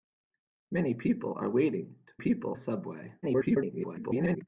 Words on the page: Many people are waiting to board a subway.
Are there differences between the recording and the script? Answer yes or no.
yes